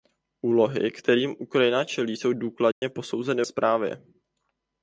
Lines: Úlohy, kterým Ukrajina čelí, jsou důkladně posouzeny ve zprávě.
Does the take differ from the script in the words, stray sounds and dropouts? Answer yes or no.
yes